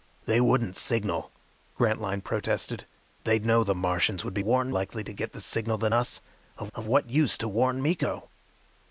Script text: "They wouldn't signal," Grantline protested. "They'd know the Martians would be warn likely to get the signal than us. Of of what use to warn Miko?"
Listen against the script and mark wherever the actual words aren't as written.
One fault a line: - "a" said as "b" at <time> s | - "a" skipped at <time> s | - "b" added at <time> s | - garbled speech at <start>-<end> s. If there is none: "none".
none